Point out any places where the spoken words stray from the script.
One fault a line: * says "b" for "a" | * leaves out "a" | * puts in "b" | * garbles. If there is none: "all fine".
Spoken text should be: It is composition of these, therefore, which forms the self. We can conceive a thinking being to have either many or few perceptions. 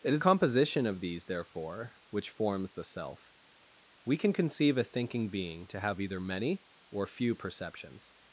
all fine